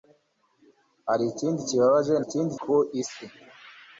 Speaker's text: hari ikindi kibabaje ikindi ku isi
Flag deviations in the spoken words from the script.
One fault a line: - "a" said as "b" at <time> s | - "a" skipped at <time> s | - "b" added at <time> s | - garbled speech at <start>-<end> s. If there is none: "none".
none